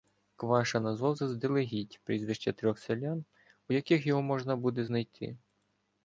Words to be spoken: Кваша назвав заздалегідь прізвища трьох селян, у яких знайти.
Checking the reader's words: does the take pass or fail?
fail